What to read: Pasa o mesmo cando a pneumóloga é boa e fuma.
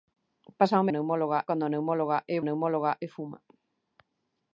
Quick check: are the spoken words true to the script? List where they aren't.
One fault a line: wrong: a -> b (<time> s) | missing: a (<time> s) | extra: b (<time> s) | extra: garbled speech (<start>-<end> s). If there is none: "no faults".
wrong: mesmo -> pneumóloga (0.9 s)
wrong: boa -> pneumóloga (2.4 s)